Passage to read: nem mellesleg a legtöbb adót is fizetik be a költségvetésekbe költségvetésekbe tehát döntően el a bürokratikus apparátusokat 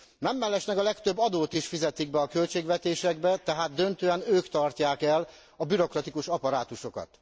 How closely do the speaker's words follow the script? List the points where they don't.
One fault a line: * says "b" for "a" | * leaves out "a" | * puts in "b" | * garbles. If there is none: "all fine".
* leaves out "költségvetésekbe"
* puts in "ők tartják"